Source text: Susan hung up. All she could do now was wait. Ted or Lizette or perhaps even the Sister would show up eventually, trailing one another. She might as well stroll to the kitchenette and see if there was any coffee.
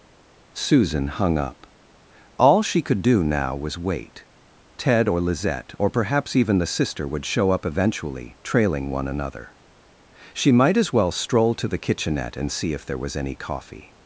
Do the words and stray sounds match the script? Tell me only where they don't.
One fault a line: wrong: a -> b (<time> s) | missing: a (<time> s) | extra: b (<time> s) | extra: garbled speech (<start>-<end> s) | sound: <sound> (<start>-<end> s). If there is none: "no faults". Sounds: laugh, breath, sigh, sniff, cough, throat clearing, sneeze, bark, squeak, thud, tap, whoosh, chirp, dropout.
no faults